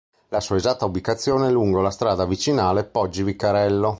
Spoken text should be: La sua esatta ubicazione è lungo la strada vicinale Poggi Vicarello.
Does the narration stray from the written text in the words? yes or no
no